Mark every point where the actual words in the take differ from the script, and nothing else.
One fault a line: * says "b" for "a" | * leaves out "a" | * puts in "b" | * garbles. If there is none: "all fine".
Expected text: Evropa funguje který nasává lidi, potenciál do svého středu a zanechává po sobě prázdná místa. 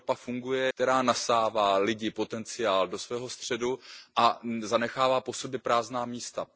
all fine